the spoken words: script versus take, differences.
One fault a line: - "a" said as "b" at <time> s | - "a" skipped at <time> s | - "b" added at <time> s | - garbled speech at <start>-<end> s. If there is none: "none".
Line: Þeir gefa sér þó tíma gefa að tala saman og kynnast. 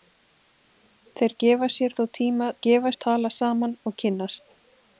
none